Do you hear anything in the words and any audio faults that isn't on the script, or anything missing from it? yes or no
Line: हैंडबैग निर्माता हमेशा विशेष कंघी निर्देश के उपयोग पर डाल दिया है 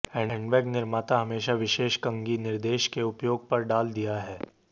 no